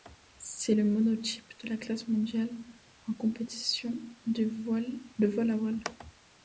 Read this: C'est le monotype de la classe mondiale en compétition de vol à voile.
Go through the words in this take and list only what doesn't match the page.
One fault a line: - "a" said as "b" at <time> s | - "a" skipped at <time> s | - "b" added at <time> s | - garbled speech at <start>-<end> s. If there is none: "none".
none